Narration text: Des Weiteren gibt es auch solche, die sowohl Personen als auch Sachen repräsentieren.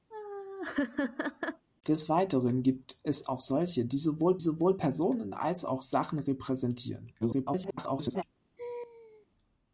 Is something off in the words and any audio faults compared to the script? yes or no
yes